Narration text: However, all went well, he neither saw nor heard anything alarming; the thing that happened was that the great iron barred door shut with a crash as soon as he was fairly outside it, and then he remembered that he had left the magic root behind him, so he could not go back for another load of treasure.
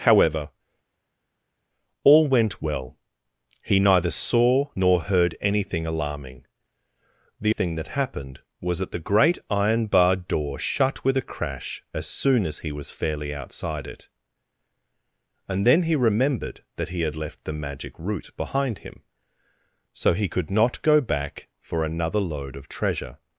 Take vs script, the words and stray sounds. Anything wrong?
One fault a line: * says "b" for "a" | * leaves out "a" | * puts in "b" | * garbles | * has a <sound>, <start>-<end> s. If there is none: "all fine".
all fine